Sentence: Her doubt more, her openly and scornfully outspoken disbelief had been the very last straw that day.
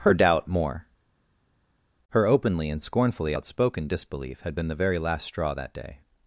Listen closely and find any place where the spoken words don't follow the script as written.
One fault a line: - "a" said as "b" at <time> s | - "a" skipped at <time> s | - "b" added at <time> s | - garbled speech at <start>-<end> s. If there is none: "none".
none